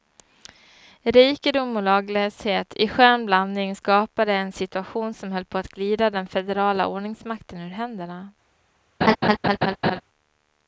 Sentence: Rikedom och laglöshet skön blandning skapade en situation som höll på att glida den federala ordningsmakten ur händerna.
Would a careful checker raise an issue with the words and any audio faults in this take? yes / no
yes